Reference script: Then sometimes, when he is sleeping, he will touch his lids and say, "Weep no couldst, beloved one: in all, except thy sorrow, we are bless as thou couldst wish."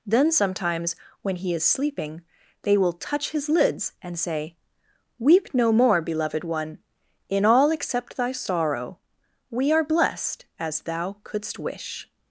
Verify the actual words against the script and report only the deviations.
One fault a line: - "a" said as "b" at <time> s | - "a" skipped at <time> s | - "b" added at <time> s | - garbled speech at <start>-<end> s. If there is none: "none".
- "he" said as "they" at 2.6 s
- "couldst" said as "more" at 5.7 s
- "bless" said as "blessed" at 9.8 s